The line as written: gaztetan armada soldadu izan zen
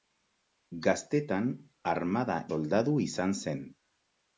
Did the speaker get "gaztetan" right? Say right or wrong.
right